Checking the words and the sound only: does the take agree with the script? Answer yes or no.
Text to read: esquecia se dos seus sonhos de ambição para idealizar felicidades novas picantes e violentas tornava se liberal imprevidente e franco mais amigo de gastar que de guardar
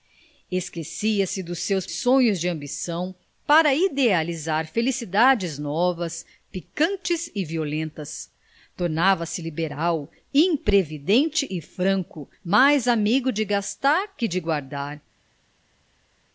yes